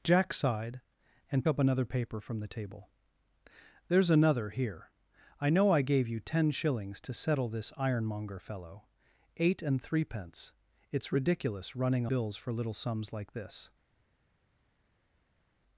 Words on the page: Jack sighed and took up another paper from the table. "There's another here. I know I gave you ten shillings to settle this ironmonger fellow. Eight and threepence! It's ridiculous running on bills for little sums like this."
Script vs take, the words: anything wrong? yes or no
yes